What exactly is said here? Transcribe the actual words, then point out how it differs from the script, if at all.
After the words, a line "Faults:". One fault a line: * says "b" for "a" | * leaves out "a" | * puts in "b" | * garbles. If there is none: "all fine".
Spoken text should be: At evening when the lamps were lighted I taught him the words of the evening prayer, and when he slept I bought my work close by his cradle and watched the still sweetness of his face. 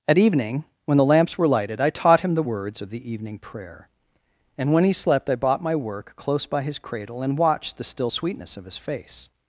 At evening when the lamps were lighted I taught him the words of the evening prayer, and when he slept I bought my work close by his cradle and watched the still sweetness of his face.
Faults:
all fine